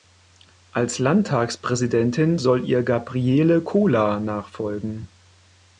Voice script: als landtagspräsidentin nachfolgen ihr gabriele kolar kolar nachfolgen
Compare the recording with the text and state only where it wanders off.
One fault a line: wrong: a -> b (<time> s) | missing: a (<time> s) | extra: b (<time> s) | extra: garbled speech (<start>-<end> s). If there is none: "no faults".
wrong: nachfolgen -> soll (2.4 s)
missing: kolar (4.2 s)